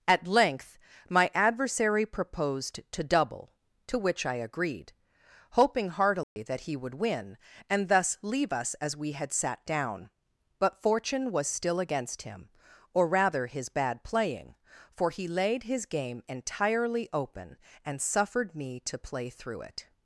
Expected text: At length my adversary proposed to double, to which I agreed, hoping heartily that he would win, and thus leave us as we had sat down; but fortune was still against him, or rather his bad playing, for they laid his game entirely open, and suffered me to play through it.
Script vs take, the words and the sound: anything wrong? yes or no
yes